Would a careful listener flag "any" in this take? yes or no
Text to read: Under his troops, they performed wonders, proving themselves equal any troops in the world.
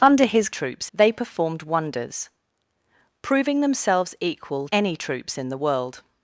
no